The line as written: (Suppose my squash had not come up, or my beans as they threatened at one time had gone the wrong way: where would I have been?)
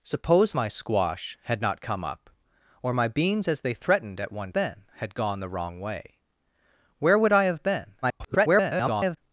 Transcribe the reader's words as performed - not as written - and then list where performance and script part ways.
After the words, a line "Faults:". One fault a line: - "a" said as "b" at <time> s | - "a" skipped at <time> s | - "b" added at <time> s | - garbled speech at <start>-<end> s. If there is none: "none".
(Suppose my squash had not come up, or my beans as they threatened at one been had gone the wrong way: where would I have been?) [garbled]
Faults:
- "time" said as "been" at 4.5 s
- garbled speech at 8.0-9.2 s